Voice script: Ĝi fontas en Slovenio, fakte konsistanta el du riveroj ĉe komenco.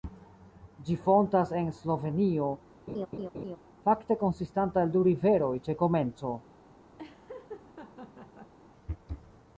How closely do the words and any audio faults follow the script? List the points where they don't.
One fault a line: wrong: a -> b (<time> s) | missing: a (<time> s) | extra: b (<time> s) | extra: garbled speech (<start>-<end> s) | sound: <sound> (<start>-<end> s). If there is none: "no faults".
sound: laugh (2.9-3.6 s)
sound: laugh (7.0-8.5 s)